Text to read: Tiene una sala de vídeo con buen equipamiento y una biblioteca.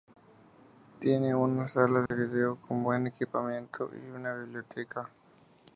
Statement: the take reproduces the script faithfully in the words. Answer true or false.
true